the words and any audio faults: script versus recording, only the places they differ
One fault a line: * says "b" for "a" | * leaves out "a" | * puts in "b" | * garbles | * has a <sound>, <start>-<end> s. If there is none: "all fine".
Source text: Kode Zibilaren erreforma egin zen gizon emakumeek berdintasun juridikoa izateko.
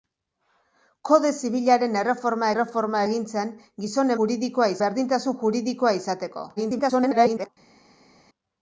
* puts in "erreforma"
* says "juridikoa" for "emakumeek"
* garbles